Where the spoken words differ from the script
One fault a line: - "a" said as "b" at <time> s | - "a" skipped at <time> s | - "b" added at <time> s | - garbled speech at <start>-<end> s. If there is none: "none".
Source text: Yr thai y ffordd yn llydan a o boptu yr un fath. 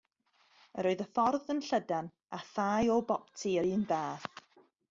- "thai" said as "oedd" at 0.9 s
- "thai" added at 2.5 s